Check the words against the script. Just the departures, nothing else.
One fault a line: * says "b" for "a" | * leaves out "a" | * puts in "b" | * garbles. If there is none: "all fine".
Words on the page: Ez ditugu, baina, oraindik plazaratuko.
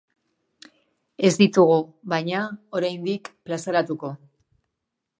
all fine